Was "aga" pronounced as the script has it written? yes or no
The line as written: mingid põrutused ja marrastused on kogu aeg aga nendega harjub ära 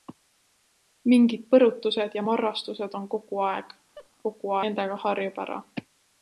no